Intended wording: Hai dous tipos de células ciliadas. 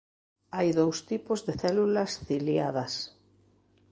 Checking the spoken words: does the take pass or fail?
pass